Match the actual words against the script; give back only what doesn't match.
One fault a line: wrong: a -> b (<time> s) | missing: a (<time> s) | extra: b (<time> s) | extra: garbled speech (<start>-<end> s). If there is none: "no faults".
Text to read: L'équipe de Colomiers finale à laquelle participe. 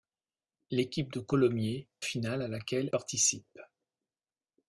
no faults